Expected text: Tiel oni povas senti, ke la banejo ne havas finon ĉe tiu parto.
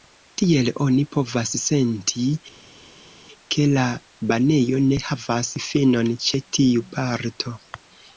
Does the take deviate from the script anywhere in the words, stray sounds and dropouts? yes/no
no